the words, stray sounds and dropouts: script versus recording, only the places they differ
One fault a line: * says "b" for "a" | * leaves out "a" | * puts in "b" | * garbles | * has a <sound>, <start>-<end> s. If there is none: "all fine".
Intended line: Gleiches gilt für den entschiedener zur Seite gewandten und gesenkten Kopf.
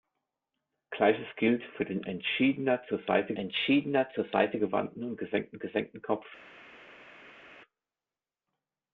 * puts in "entschiedener zur Seite"
* puts in "gesenkten"